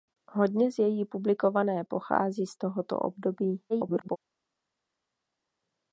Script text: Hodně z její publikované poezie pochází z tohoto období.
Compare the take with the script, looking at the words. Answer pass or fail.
fail